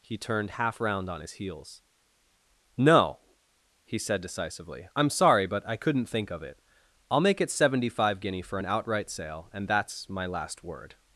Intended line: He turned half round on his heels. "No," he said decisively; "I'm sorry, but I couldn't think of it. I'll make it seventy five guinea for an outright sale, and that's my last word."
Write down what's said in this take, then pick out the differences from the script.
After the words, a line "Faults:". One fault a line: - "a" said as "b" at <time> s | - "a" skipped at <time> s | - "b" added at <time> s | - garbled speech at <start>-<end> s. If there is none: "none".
He turned half round on his heels. "No," he said decisively; "I'm sorry, but I couldn't think of it. I'll make it seventy five guinea for an outright sale, and that's my last word."
Faults:
none